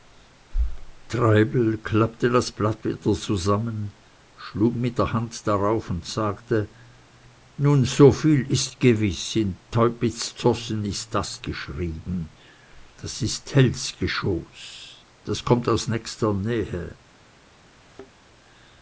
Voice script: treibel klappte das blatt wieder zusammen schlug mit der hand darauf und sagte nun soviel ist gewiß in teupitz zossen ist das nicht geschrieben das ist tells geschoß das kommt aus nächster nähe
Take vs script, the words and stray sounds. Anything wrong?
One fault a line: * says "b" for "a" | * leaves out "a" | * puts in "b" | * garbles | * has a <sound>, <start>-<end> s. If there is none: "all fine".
* leaves out "nicht"
* has a thud, 17.8-18.1 s